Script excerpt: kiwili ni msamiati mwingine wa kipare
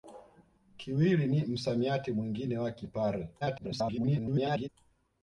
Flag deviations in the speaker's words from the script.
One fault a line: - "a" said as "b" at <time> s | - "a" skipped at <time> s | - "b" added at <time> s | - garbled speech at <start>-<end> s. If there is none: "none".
- garbled speech at 3.4-4.7 s